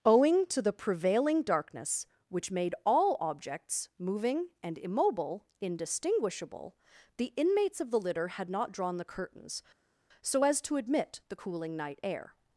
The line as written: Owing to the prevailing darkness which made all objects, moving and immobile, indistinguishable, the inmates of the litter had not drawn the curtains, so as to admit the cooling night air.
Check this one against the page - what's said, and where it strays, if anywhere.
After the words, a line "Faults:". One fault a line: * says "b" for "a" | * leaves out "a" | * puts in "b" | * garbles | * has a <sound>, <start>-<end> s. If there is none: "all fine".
Owing to the prevailing darkness which made all objects, moving and immobile, indistinguishable, the inmates of the litter had not drawn the curtains, so as to admit the cooling night air.
Faults:
all fine